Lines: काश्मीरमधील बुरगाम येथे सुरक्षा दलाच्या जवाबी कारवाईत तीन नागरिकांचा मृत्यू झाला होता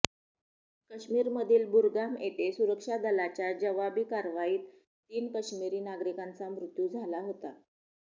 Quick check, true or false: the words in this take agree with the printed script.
false